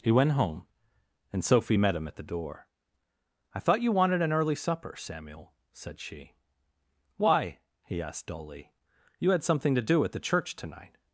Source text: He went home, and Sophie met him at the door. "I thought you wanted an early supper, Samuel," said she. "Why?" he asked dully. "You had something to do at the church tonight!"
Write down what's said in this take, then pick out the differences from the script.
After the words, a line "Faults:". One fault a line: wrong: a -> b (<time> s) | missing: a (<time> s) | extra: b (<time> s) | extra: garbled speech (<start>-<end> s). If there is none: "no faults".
He went home, and Sophie met him at the door. "I thought you wanted an early supper, Samuel," said she. "Why?" he asked dully. "You had something to do at the church tonight!"
Faults:
no faults